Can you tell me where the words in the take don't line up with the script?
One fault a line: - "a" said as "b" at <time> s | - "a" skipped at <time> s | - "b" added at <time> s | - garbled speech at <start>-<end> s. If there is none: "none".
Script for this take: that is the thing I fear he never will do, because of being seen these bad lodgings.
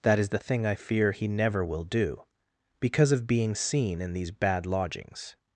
- "in" added at 4.0 s